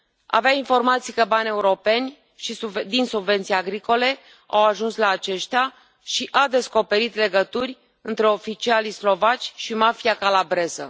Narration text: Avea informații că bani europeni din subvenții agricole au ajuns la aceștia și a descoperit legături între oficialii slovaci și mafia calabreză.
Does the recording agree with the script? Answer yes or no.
yes